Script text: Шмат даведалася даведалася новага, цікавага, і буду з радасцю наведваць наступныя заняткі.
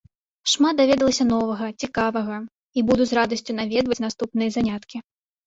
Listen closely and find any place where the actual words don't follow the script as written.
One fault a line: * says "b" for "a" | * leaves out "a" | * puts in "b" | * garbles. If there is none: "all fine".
* leaves out "даведалася"